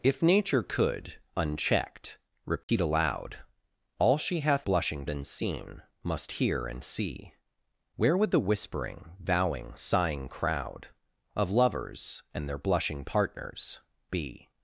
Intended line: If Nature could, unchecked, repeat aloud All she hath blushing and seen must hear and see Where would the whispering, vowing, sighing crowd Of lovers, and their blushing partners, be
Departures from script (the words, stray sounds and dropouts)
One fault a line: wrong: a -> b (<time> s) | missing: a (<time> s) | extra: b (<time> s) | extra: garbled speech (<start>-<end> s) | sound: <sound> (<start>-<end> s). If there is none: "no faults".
sound: dropout (2.6-2.7 s)